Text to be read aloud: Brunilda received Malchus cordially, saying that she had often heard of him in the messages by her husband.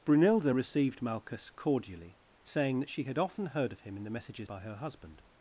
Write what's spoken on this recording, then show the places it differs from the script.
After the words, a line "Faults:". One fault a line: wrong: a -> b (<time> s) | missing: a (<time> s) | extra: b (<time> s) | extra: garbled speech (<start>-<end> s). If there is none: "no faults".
Brunilda received Malchus cordially, saying that she had often heard of him in the messages by her husband.
Faults:
no faults